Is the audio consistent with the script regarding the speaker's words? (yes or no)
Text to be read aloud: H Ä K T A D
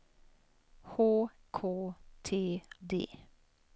no